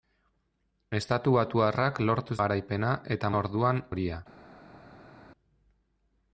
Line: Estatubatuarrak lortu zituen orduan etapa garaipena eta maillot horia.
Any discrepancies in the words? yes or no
yes